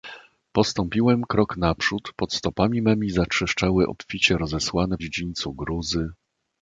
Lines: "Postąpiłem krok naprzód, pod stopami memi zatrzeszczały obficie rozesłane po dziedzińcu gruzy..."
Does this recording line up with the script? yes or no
no